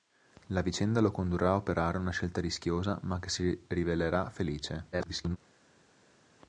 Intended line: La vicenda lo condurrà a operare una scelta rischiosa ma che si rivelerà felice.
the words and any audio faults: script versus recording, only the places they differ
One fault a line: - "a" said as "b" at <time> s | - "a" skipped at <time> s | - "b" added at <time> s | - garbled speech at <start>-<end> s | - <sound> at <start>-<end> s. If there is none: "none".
- garbled speech at 4.9-5.4 s